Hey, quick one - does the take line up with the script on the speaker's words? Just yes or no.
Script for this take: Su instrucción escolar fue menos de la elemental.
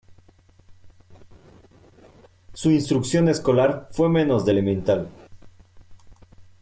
no